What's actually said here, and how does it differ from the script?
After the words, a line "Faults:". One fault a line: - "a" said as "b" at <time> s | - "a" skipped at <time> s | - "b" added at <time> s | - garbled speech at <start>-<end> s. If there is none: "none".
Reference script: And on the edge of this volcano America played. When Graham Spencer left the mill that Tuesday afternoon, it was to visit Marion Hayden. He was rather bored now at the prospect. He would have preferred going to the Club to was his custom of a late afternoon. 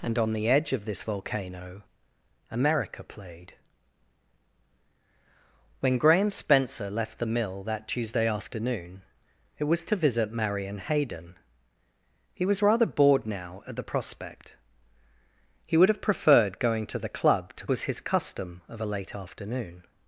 And on the edge of this volcano America played. When Graham Spencer left the mill that Tuesday afternoon, it was to visit Marion Hayden. He was rather bored now at the prospect. He would have preferred going to the Club to was his custom of a late afternoon.
Faults:
none